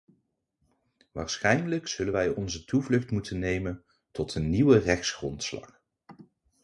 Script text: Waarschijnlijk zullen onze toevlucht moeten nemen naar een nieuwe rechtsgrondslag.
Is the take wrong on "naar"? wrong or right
wrong